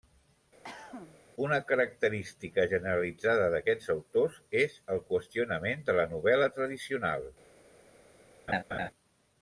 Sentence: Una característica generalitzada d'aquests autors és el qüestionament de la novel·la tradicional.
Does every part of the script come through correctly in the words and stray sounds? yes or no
no